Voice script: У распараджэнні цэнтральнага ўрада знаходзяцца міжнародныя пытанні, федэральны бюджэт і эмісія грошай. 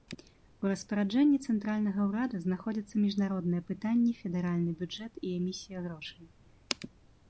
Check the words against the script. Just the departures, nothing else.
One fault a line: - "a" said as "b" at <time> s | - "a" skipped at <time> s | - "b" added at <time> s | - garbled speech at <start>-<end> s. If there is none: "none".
none